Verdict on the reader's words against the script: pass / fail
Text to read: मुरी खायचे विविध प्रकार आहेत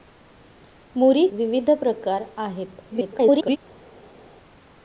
fail